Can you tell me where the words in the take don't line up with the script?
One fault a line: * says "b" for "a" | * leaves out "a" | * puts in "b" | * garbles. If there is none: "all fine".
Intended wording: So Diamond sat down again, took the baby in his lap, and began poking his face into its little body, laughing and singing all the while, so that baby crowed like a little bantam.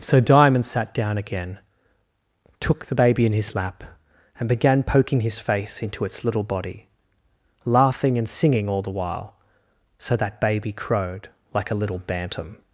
all fine